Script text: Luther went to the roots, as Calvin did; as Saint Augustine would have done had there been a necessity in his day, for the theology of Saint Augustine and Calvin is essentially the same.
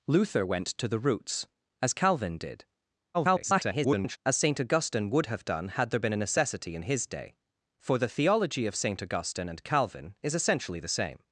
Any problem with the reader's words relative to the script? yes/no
yes